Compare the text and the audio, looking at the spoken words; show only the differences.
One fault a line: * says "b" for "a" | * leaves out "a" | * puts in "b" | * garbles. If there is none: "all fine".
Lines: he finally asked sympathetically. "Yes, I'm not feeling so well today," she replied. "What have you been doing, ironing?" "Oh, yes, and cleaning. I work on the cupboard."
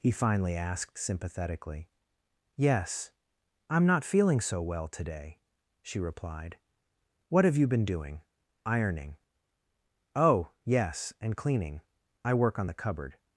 all fine